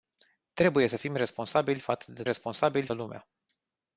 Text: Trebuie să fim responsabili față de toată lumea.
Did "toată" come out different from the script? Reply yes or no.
yes